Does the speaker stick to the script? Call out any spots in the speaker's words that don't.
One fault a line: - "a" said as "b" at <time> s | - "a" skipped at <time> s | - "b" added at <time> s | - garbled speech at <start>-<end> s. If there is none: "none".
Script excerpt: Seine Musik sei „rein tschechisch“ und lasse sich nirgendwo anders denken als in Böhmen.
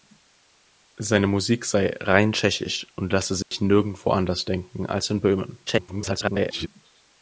- garbled speech at 5.7-6.7 s